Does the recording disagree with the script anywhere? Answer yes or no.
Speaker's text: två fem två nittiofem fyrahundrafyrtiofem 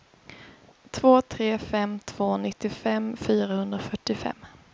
yes